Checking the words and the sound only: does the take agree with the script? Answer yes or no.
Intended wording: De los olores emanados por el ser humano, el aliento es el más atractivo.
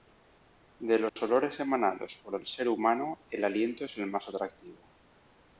no